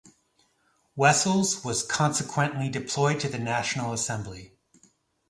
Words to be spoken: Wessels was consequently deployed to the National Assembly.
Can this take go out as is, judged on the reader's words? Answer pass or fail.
pass